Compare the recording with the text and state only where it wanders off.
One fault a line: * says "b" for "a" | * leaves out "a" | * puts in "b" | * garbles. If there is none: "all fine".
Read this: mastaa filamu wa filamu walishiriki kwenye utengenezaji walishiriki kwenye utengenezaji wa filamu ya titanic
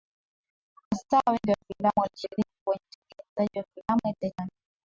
* says "wengi" for "filamu"
* leaves out "walishiriki kwenye utengenezaji"